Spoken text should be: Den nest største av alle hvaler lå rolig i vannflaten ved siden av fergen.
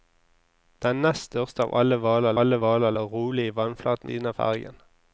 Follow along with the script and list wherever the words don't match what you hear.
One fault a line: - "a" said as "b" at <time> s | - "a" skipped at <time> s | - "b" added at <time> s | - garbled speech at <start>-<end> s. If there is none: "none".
- "alle hvaler" added at 2.4 s
- "ved" skipped at 4.1 s